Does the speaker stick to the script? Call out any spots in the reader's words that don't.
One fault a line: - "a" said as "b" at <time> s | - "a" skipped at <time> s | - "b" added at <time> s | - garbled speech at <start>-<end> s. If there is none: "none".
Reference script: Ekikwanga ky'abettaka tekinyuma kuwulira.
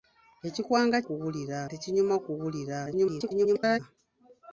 - "ky'abettaka" said as "kuwulira" at 1.0 s
- garbled speech at 2.8-3.8 s